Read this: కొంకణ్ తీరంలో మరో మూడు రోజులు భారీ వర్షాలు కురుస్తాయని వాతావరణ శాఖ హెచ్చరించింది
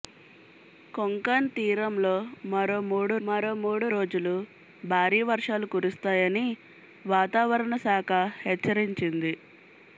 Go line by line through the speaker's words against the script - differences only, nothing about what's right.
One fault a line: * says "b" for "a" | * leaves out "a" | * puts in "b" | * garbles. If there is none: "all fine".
* puts in "మరో మూడు"